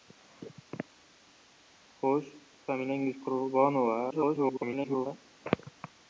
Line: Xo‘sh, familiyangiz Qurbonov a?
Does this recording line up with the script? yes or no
no